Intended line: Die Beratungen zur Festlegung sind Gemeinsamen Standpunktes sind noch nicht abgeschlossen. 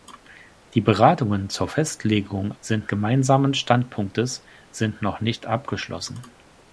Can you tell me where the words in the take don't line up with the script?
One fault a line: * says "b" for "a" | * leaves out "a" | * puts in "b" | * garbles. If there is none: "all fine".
all fine